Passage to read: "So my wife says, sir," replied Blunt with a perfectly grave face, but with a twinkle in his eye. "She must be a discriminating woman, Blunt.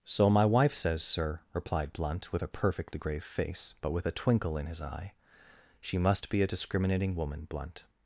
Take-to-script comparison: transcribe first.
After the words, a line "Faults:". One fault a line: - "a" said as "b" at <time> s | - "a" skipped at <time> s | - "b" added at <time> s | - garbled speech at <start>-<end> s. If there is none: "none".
"So my wife says, sir," replied Blunt with a perfectly grave face, but with a twinkle in his eye. "She must be a discriminating woman, Blunt.
Faults:
none